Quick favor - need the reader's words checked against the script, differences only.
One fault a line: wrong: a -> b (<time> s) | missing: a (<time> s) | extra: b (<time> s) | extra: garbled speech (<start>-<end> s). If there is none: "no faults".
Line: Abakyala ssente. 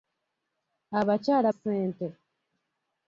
no faults